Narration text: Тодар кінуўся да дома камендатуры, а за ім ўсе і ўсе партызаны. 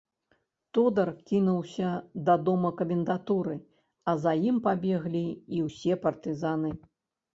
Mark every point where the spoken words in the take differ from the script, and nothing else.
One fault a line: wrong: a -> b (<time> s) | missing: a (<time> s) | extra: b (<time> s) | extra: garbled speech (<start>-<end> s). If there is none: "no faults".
wrong: ўсе -> пабеглі (4.7 s)